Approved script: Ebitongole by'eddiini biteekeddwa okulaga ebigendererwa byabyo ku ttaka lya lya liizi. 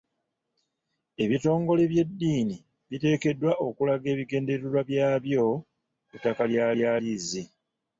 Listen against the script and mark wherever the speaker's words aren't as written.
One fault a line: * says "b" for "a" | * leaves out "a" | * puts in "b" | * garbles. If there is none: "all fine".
all fine